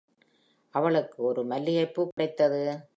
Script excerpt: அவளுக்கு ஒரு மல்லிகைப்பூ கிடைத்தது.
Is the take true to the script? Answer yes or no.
yes